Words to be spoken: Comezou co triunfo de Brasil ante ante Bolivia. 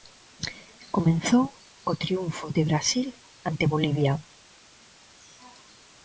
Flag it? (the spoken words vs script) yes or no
yes